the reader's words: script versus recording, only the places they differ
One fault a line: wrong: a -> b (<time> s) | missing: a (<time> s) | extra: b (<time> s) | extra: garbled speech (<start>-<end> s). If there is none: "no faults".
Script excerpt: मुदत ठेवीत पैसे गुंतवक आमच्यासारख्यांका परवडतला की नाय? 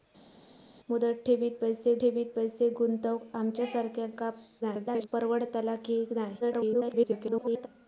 extra: ठेवीत पैसे (2.0 s)
extra: garbled speech (4.6-5.1 s)
extra: garbled speech (6.4-7.7 s)